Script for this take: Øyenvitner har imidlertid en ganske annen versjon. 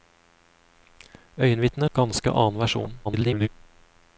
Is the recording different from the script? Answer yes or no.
yes